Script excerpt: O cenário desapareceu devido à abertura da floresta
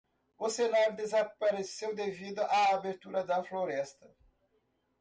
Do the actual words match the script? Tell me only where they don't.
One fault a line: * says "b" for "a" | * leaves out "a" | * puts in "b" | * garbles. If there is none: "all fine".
all fine